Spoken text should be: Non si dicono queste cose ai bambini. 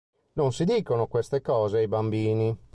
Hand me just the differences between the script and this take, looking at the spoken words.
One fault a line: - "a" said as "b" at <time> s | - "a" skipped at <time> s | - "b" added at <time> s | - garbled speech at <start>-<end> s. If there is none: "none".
none